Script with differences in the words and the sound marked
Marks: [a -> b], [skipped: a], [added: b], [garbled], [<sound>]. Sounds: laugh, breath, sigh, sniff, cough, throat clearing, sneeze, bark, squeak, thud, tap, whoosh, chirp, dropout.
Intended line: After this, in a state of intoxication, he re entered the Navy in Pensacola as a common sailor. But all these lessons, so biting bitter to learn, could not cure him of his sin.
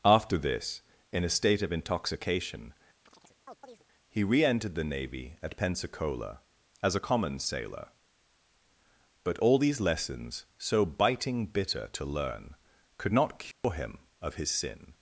After this, in a state of intoxication, [chirp] he re entered the Navy [in -> at] Pensacola as a common sailor. But all these lessons, so biting bitter to learn, could not cure [dropout] him of his sin.